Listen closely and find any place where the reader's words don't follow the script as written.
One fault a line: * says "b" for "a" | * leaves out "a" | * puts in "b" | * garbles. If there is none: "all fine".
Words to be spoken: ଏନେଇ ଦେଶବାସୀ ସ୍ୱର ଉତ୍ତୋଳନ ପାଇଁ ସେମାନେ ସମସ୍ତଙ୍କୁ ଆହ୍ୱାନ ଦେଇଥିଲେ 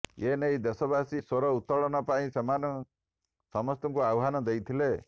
all fine